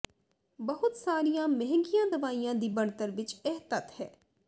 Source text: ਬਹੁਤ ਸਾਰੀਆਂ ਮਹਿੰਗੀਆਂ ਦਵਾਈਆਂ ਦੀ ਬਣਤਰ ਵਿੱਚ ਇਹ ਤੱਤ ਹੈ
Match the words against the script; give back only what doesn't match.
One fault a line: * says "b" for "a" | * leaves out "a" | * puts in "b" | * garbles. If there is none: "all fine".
all fine